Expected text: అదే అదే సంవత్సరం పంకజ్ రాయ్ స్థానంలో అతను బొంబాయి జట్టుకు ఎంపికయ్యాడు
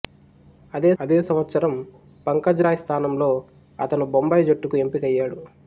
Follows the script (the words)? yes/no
yes